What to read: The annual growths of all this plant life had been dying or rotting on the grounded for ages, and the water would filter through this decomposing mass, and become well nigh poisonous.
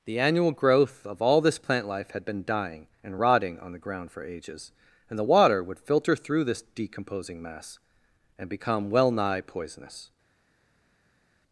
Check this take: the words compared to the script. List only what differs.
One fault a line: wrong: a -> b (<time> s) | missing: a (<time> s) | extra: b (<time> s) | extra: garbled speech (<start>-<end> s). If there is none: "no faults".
wrong: growths -> growth (0.5 s)
wrong: or -> and (3.0 s)
wrong: grounded -> ground (3.8 s)